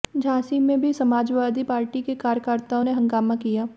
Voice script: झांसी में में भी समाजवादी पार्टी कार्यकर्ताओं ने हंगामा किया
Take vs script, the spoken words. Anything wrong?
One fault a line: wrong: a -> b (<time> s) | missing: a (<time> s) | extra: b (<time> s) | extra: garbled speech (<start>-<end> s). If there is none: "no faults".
missing: में (0.8 s)
extra: के (2.0 s)